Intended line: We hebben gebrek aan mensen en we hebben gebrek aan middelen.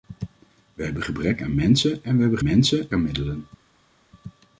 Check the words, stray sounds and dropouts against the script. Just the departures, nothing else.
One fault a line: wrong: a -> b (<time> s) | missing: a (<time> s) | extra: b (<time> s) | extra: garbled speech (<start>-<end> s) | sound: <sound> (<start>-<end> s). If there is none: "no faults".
wrong: gebrek -> mensen (2.4 s)